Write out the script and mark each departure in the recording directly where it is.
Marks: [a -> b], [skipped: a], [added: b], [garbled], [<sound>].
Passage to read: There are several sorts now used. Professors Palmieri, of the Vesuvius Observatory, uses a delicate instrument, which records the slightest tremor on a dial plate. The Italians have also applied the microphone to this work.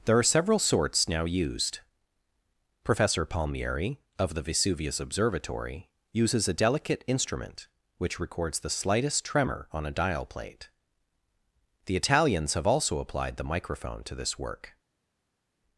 There are several sorts now used. [Professors -> Professor] Palmieri, of the Vesuvius Observatory, uses a delicate instrument, which records the slightest tremor on a dial plate. The Italians have also applied the microphone to this work.